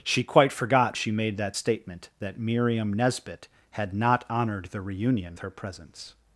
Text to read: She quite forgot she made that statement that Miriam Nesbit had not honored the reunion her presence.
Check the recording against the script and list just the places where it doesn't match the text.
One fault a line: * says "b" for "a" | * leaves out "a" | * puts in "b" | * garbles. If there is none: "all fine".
all fine